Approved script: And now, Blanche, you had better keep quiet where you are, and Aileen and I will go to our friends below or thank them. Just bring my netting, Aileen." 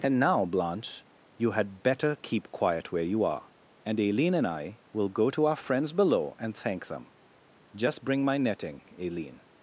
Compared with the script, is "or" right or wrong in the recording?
wrong